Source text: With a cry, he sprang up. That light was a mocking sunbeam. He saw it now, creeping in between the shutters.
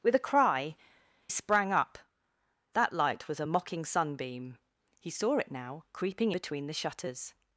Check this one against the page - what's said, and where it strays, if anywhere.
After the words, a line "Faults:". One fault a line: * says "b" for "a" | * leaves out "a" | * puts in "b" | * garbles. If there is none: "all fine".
With a cry, sprang up. That light was a mocking sunbeam. He saw it now, creeping between the shutters.
Faults:
* leaves out "he"
* leaves out "in"